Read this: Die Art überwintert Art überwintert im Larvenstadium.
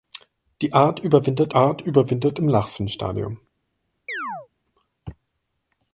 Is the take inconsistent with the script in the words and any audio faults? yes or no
yes